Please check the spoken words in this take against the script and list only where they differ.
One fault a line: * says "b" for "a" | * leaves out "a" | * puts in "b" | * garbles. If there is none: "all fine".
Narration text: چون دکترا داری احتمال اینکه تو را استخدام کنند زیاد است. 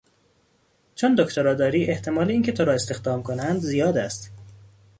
all fine